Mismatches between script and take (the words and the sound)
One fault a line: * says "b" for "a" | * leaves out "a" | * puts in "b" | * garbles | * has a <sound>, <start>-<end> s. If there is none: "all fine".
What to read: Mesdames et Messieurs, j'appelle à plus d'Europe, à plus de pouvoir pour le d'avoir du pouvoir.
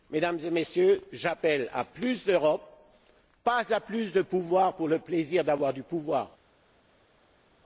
* puts in "pas"
* puts in "plaisir"